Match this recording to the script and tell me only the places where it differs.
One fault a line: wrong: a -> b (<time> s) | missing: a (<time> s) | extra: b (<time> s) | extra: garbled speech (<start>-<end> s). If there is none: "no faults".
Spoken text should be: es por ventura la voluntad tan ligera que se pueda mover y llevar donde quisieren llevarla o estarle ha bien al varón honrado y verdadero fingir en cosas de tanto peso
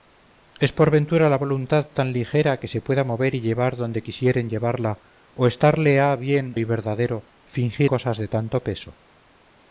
missing: al varón honrado (6.5 s)
missing: en (7.9 s)